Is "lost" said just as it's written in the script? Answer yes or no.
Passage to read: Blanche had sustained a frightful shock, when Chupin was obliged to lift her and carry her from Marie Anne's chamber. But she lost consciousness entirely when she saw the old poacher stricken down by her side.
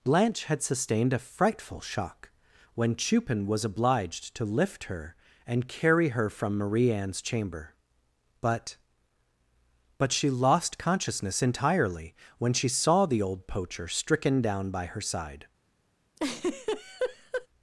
yes